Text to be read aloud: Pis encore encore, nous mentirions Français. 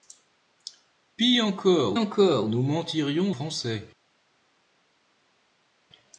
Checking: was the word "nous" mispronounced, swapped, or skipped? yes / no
no